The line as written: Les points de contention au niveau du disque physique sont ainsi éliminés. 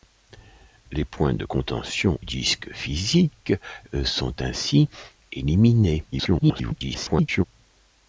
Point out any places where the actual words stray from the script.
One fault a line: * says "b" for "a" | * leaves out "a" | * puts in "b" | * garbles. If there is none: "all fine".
* leaves out "au niveau du"
* garbles